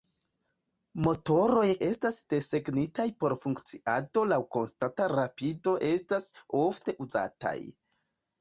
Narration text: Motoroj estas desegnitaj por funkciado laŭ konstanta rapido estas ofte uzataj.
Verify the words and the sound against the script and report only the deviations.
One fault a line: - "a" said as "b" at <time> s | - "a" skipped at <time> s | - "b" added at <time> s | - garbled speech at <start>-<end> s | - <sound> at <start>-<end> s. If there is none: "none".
none